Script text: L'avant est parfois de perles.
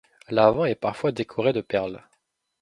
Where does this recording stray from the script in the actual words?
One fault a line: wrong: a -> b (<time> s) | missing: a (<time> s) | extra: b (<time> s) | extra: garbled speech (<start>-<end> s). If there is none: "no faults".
extra: décoré (1.1 s)